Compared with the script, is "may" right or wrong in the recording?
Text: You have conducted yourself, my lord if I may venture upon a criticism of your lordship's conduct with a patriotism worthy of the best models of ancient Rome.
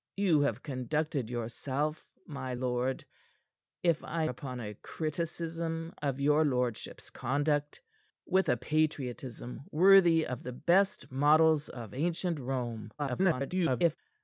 wrong